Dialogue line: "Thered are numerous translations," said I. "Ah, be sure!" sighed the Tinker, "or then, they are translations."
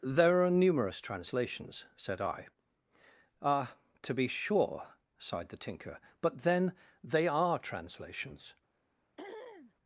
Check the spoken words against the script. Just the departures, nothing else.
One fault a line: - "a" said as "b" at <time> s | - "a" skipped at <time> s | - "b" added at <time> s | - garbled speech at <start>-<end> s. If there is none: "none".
- "Thered" said as "There" at 0.0 s
- "to" added at 4.0 s
- "or" said as "but" at 6.2 s